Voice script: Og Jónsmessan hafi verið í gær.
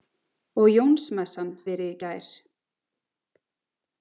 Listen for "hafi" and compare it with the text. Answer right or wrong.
wrong